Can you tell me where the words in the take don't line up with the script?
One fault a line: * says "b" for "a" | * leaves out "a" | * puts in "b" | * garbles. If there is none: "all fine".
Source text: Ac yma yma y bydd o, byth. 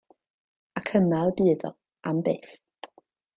* leaves out "yma"
* puts in "am"